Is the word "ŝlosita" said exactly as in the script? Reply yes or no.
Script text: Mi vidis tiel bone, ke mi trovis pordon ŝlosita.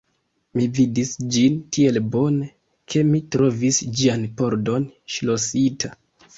yes